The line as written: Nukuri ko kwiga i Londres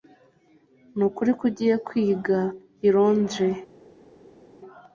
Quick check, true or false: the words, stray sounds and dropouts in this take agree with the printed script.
false